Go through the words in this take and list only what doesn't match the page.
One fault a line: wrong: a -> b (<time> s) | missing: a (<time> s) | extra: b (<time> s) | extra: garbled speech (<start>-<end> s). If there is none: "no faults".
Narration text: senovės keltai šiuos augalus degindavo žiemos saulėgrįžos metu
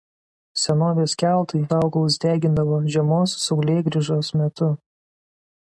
missing: šiuos (1.6 s)